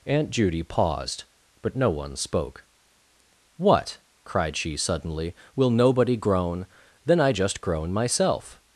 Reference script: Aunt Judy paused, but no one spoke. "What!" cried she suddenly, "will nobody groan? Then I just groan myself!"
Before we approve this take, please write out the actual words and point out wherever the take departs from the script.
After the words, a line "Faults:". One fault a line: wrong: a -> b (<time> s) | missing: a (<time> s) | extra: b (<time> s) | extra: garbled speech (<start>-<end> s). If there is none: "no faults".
Aunt Judy paused, but no one spoke. "What!" cried she suddenly, "will nobody groan? Then I just groan myself!"
Faults:
no faults